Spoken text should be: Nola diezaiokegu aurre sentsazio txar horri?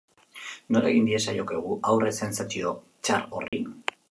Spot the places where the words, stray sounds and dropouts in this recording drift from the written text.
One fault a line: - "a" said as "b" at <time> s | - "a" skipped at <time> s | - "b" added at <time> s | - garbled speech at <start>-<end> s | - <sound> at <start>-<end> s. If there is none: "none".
- "egin" added at 0.9 s
- dropout at 3.5-3.5 s